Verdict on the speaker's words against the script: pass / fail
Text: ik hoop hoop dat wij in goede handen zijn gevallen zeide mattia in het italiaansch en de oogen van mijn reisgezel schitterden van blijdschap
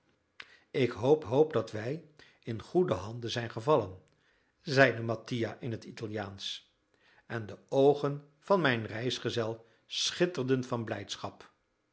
pass